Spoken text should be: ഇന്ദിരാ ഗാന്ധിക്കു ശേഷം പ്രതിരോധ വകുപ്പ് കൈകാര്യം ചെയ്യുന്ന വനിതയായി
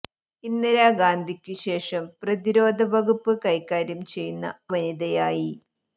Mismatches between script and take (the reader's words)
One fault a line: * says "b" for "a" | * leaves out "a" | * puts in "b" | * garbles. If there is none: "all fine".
all fine